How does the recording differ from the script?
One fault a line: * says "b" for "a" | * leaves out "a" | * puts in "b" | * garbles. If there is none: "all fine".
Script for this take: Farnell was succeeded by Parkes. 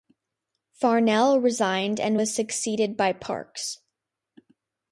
* puts in "resigned and"